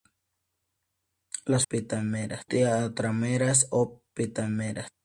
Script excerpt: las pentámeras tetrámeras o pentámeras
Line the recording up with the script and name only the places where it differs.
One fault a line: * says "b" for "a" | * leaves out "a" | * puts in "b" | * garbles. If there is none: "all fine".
all fine